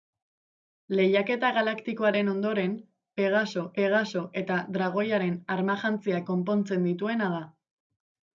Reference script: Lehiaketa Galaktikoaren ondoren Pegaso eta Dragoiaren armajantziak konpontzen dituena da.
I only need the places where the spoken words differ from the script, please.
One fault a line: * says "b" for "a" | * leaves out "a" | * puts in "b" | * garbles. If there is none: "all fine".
* puts in "Pegaso"